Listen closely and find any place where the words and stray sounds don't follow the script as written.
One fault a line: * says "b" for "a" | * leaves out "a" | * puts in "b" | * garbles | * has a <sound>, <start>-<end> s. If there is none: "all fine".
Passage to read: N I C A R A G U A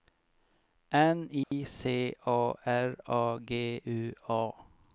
* has a dropout, 1.4-1.5 s